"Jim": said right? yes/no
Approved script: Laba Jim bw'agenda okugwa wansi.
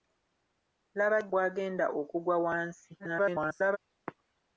no